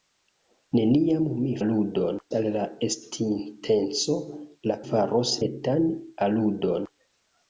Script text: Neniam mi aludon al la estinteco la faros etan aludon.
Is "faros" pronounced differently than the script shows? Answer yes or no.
no